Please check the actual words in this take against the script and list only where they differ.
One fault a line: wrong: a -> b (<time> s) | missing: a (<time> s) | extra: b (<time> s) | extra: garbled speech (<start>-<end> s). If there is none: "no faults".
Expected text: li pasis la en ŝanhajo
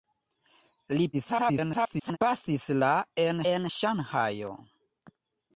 extra: garbled speech (1.1-2.2 s)
extra: en (3.5 s)